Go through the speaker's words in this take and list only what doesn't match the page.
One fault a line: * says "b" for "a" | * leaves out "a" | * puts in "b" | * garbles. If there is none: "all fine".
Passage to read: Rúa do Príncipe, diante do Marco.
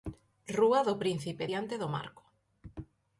all fine